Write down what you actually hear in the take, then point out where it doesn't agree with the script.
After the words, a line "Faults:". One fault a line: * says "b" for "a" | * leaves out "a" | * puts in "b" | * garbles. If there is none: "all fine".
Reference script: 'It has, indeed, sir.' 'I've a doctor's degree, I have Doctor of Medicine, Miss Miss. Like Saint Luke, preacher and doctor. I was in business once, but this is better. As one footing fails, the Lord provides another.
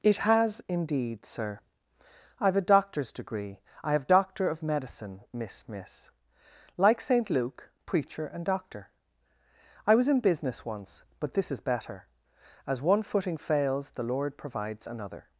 'It has, indeed, sir.' 'I've a doctor's degree, I have Doctor of Medicine, Miss Miss. Like Saint Luke, preacher and doctor. I was in business once, but this is better. As one footing fails, the Lord provides another.
Faults:
all fine